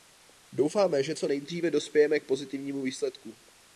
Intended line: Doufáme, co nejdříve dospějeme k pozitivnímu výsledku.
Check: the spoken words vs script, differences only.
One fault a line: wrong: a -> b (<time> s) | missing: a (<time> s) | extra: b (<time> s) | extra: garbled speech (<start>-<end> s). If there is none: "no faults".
extra: že (1.0 s)